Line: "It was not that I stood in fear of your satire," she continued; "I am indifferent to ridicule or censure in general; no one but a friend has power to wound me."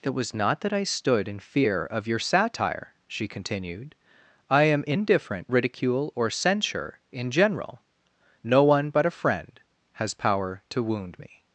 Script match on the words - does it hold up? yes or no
no